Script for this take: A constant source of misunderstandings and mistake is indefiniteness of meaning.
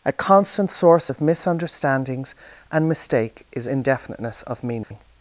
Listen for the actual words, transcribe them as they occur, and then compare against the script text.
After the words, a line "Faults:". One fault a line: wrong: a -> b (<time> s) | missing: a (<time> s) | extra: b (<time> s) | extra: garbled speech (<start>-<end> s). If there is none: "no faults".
A constant source of misunderstandings and mistake is indefiniteness of meaning.
Faults:
no faults